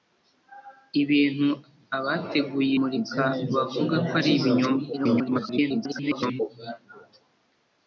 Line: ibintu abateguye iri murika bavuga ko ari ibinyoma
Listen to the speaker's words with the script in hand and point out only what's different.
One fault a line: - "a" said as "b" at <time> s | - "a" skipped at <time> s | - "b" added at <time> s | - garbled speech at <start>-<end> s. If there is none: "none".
- "iri" skipped at 2.7 s
- garbled speech at 4.9-6.4 s